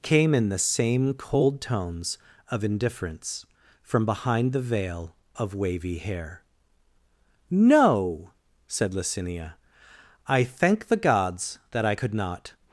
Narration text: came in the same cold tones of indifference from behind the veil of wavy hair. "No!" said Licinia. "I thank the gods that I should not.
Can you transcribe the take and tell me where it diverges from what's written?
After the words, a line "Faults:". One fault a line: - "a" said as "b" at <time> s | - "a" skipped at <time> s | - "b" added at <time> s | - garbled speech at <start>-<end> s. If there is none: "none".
came in the same cold tones of indifference from behind the veil of wavy hair. "No!" said Licinia. "I thank the gods that I could not.
Faults:
- "should" said as "could" at 11.9 s